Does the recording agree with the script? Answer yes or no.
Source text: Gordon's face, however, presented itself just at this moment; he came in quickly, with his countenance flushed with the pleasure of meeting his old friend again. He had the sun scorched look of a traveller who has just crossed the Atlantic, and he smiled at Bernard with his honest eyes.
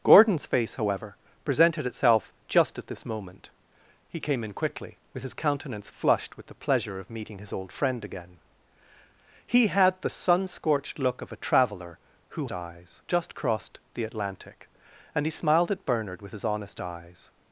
no